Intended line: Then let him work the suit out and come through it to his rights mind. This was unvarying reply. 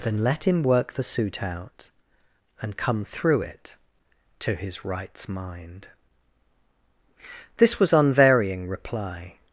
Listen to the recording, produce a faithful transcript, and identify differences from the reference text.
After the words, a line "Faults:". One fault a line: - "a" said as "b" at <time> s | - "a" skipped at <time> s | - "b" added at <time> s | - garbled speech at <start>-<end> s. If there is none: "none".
Then let him work the suit out and come through it to his rights mind. This was unvarying reply.
Faults:
none